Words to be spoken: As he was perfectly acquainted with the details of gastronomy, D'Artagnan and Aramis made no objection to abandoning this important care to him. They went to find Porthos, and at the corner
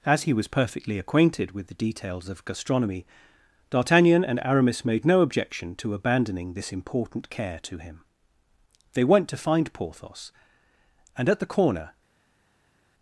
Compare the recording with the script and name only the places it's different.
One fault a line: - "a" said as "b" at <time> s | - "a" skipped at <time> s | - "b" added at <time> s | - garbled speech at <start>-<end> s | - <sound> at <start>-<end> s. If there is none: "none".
none